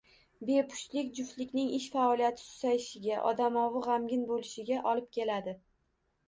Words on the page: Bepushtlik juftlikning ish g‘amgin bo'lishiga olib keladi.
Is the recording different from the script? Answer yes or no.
yes